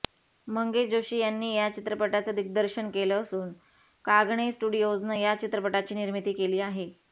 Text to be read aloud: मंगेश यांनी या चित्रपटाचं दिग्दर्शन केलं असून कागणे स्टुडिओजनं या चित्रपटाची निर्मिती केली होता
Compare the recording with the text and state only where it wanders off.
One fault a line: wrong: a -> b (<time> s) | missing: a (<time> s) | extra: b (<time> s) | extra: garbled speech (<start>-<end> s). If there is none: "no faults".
extra: जोशी (0.9 s)
wrong: होता -> आहे (6.6 s)